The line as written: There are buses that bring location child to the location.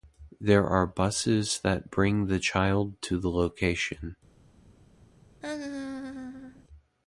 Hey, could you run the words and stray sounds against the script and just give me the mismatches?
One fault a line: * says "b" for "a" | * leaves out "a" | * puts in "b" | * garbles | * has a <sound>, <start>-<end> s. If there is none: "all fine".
* says "the" for "location"
* has a laugh, 5.4-6.6 s